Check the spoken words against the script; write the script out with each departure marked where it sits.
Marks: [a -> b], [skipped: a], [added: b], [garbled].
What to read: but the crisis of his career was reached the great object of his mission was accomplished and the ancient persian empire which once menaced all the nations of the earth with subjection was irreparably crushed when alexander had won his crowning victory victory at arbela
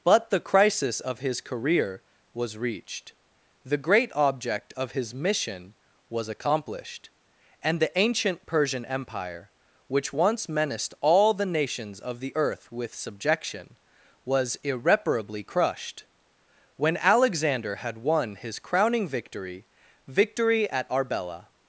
but the crisis of his career was reached the great object of his mission was accomplished and the ancient persian empire which once menaced all the nations of the earth with subjection was irreparably crushed when alexander had won his crowning victory victory at arbela